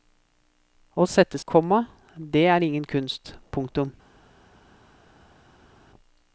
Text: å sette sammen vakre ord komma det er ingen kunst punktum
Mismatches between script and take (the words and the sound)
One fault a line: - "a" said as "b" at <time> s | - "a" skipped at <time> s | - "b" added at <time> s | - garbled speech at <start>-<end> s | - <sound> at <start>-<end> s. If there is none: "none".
- "sammen vakre ord" skipped at 1.4 s